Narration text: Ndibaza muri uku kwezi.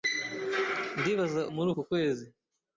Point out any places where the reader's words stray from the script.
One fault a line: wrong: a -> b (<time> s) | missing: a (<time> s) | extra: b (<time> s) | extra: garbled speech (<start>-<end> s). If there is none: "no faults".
no faults